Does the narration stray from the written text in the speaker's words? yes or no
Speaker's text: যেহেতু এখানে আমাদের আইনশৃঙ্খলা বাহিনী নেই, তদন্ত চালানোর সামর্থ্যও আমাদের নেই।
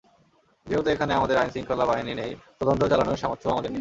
no